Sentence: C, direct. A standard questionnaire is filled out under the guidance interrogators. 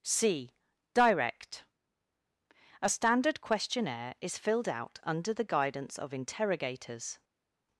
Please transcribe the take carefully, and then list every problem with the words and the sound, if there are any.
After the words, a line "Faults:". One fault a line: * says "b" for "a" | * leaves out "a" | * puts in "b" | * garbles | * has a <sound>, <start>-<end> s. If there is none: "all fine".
C, direct. A standard questionnaire is filled out under the guidance of interrogators.
Faults:
* puts in "of"